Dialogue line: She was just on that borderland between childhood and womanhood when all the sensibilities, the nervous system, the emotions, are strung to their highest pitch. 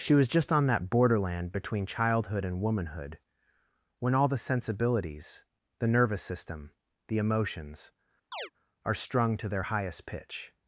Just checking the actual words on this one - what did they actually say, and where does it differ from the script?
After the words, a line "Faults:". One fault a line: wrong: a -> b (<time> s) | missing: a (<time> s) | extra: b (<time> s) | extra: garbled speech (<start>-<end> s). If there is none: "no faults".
She was just on that borderland between childhood and womanhood when all the sensibilities, the nervous system, the emotions, are strung to their highest pitch.
Faults:
no faults